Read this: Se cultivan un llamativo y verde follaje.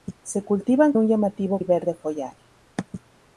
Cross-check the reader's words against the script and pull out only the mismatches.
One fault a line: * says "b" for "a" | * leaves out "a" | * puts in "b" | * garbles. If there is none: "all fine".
all fine